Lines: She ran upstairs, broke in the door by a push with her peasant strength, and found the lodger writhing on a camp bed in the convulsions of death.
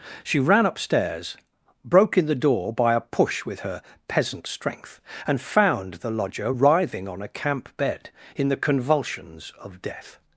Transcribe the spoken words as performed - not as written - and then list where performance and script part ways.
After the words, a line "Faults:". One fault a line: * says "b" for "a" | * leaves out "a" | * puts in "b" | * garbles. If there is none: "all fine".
She ran upstairs, broke in the door by a push with her peasant strength, and found the lodger writhing on a camp bed in the convulsions of death.
Faults:
all fine